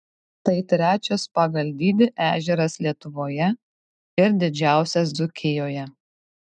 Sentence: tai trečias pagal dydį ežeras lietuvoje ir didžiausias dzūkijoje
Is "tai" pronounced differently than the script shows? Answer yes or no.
no